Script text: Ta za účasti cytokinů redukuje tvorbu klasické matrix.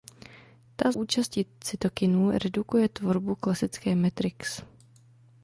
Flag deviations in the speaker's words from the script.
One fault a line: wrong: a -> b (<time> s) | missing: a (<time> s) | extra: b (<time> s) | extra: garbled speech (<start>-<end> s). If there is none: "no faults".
missing: za (0.9 s)